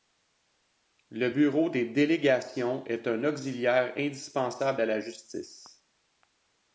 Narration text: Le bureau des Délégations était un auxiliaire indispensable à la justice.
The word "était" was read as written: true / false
false